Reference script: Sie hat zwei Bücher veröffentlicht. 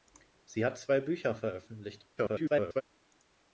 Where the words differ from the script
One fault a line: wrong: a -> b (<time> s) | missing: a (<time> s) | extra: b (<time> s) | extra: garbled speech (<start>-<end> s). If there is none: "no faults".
extra: garbled speech (2.2-2.8 s)